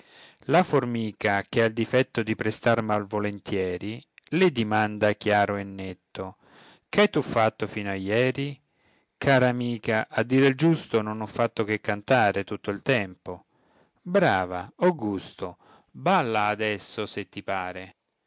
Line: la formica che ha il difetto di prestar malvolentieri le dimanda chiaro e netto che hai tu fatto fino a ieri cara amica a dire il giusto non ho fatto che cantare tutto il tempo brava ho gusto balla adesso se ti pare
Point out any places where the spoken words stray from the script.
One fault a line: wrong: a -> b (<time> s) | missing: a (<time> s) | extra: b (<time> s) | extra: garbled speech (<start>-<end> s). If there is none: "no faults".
no faults